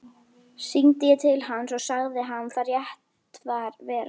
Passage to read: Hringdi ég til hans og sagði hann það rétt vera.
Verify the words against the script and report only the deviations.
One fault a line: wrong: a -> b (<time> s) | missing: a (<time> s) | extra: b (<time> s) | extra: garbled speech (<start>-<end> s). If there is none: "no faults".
no faults